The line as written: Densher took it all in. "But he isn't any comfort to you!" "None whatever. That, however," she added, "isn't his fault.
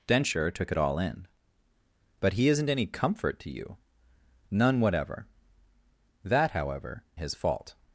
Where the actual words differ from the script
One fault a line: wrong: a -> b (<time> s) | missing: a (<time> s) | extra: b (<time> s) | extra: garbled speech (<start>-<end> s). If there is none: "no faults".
missing: she added isn't (7.0 s)